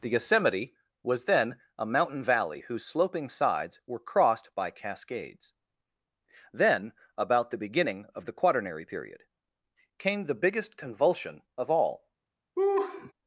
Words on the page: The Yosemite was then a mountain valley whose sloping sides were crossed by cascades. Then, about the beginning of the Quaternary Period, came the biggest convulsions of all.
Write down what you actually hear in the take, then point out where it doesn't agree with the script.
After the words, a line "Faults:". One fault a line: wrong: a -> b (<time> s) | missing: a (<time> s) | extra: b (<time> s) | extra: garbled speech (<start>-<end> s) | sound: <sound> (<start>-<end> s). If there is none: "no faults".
The Yosemite was then a mountain valley whose sloping sides were crossed by cascades. Then, about the beginning of the Quaternary Period, came the biggest convulsion of all.
Faults:
wrong: convulsions -> convulsion (10.8 s)
sound: laugh (12.6-13.1 s)